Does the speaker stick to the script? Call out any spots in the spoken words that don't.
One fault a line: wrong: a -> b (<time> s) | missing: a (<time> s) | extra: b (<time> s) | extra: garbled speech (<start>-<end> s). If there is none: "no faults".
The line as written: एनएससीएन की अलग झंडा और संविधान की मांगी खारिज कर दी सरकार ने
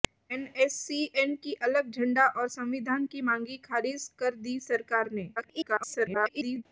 extra: garbled speech (5.4-6.6 s)